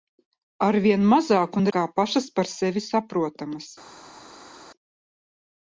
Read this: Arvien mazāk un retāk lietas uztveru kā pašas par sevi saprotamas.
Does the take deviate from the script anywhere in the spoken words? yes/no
yes